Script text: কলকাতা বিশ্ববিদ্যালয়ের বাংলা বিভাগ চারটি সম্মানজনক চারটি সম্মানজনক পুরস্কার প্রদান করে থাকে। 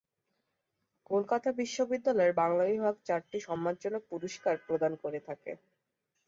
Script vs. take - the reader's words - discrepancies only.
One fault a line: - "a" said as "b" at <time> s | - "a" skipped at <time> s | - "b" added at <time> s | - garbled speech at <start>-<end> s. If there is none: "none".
- "চারটি সম্মানজনক" skipped at 4.0 s